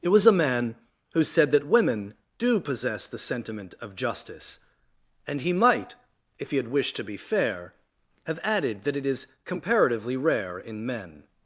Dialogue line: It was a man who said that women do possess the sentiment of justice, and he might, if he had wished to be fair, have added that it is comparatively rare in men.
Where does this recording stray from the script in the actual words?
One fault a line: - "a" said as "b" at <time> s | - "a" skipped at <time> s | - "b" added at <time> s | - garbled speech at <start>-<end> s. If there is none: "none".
none